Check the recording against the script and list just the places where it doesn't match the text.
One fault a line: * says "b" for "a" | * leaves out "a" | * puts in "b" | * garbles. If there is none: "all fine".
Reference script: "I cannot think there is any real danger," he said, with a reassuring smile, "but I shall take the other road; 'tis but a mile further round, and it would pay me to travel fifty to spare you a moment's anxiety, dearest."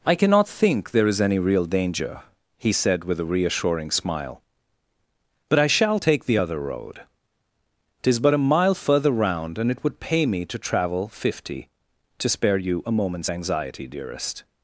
all fine